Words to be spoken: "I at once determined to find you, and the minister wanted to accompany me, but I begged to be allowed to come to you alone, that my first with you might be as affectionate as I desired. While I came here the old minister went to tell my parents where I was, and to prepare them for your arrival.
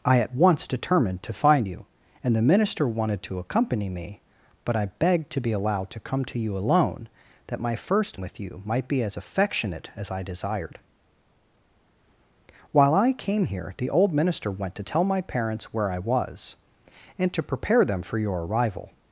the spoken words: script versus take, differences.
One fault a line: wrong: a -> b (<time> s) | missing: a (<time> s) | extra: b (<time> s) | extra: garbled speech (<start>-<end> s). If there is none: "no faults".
no faults